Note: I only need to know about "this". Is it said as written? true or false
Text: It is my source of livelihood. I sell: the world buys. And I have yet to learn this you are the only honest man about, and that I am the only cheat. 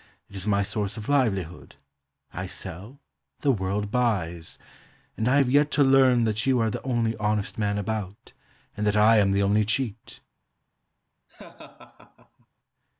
false